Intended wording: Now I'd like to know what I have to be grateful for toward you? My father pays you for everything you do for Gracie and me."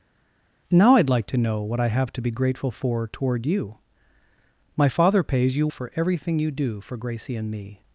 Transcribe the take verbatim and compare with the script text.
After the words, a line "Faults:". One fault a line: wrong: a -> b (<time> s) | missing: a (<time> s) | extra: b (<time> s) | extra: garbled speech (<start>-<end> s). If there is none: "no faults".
Now I'd like to know what I have to be grateful for toward you? My father pays you for everything you do for Gracie and me."
Faults:
no faults